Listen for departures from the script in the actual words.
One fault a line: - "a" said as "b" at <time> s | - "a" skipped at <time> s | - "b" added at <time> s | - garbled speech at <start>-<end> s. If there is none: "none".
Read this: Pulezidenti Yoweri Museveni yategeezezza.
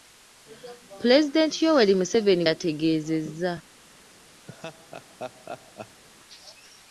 none